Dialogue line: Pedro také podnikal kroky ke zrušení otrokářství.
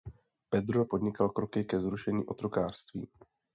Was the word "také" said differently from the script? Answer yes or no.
yes